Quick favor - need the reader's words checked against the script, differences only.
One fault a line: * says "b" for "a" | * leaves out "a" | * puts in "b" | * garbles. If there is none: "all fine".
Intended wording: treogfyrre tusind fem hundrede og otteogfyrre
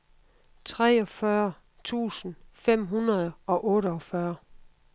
all fine